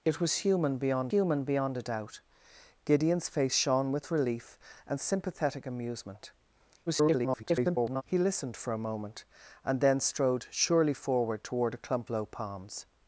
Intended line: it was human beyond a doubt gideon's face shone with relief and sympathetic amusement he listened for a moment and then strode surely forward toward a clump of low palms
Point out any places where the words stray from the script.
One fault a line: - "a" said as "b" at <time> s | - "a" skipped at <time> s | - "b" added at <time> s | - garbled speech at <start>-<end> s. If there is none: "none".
- "human beyond" added at 1.1 s
- garbled speech at 6.9-8.0 s
- "of" skipped at 12.1 s